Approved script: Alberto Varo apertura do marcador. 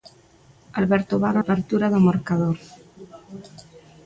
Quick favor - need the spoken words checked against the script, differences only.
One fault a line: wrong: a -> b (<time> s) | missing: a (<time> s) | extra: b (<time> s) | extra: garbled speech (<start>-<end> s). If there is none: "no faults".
no faults